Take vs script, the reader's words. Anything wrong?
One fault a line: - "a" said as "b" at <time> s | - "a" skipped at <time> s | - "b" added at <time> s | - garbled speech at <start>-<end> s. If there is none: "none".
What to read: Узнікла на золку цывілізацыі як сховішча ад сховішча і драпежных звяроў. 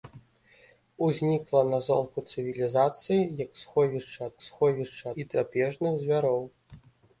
none